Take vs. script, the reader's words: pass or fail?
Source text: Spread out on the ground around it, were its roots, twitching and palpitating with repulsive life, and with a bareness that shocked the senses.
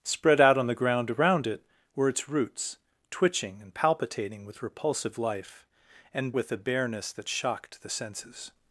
pass